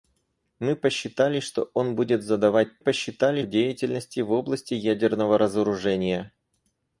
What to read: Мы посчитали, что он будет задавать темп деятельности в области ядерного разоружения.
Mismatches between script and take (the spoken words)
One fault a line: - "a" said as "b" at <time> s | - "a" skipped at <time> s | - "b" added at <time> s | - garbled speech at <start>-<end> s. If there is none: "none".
- "темп" said as "посчитали" at 2.8 s